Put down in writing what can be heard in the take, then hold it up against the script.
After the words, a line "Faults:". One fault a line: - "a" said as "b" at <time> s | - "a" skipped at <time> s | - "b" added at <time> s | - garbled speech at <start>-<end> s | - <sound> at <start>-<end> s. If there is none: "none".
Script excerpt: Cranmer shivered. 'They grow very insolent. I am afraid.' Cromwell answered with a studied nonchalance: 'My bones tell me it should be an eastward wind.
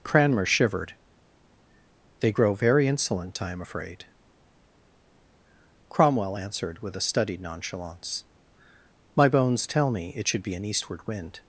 Cranmer shivered. 'They grow very insolent. I am afraid.' Cromwell answered with a studied nonchalance: 'My bones tell me it should be an eastward wind.
Faults:
none